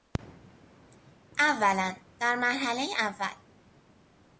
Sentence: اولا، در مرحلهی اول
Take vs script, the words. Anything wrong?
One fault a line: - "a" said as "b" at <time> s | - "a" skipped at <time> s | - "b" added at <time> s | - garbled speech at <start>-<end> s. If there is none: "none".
none